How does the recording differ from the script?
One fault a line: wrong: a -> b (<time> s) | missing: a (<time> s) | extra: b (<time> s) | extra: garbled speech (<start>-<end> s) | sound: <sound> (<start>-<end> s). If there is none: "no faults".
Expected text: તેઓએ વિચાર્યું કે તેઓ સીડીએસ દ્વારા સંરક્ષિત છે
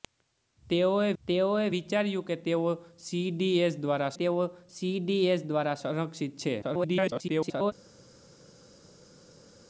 extra: તેઓએ (1.2 s)
extra: તેઓ સીડીએસ દ્વારા (4.2 s)
extra: garbled speech (6.6-7.7 s)